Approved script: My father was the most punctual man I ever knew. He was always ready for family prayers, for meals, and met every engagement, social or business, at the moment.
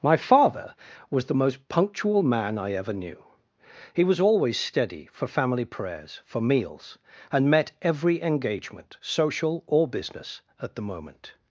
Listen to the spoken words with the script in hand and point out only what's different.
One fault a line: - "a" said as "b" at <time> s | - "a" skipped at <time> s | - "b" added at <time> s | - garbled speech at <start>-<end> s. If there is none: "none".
- "ready" said as "steady" at 4.6 s